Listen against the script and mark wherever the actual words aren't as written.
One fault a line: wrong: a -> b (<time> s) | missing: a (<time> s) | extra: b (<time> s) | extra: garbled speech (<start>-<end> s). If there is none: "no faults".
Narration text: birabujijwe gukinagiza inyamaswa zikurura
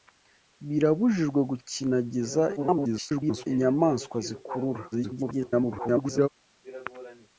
extra: garbled speech (2.6-3.5 s)
extra: garbled speech (4.9-6.3 s)